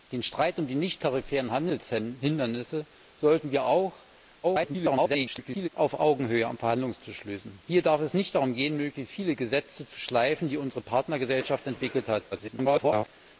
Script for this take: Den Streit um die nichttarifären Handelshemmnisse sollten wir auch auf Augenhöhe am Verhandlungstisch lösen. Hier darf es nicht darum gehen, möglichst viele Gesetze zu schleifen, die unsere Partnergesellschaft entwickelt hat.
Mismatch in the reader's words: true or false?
true